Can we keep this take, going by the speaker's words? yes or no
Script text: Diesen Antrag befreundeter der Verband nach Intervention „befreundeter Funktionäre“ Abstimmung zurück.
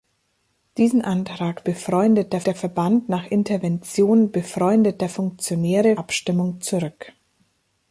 yes